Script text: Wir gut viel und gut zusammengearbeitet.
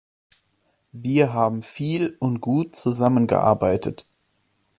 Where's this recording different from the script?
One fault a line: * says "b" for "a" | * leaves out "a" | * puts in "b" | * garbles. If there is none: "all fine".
* says "haben" for "gut"